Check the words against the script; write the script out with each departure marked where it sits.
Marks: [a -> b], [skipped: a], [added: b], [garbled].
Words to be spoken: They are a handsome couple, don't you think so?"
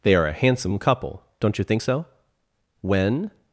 They are a handsome couple, don't you think so?" [added: When]